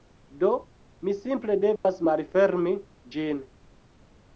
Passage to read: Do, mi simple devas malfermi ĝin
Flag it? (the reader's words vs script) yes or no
no